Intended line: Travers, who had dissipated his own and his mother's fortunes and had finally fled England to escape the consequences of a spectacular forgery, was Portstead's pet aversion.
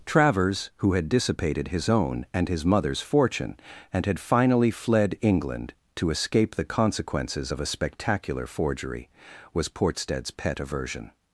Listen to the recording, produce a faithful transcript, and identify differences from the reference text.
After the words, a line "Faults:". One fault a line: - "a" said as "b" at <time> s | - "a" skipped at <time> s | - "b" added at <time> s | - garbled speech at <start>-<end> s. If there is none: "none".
Travers, who had dissipated his own and his mother's fortune and had finally fled England to escape the consequences of a spectacular forgery, was Portstead's pet aversion.
Faults:
- "fortunes" said as "fortune" at 3.0 s